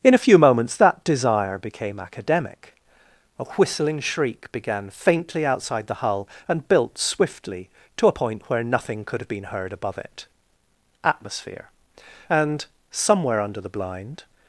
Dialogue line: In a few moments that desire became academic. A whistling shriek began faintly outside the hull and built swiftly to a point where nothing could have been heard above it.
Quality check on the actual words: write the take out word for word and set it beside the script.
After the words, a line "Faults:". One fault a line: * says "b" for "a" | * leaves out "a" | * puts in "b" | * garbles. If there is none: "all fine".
In a few moments that desire became academic. A whistling shriek began faintly outside the hull and built swiftly to a point where nothing could have been heard above it. Atmosphere. And somewhere under the blind
Faults:
* puts in "Atmosphere And somewhere under the blind"